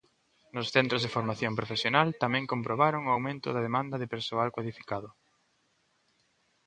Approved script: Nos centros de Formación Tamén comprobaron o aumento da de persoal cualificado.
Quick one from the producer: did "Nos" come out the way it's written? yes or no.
yes